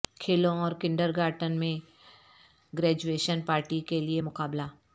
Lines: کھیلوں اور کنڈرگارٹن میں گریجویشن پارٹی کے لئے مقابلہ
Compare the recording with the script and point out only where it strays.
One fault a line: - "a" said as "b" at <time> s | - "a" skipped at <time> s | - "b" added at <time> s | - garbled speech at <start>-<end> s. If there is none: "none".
none